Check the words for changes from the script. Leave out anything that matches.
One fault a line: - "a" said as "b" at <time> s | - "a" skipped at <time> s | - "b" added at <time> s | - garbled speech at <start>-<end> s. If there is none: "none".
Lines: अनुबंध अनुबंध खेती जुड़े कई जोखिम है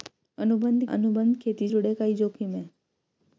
none